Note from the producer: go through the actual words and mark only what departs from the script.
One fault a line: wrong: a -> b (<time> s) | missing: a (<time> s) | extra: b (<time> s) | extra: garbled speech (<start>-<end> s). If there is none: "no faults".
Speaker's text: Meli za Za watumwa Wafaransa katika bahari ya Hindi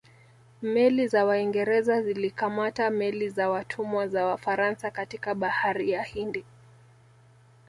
extra: Waingereza zilikamata meli (1.2 s)
extra: za (4.1 s)